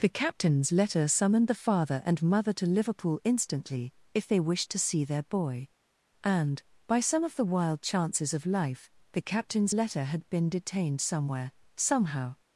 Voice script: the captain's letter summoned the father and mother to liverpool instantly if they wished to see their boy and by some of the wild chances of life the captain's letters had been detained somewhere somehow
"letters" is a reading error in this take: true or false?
true